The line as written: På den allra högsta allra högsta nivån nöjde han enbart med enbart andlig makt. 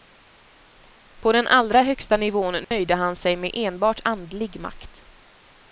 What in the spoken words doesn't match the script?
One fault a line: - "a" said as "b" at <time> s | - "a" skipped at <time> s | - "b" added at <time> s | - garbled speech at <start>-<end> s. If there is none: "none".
- "allra högsta" skipped at 2.2 s
- "enbart" said as "sig" at 3.1 s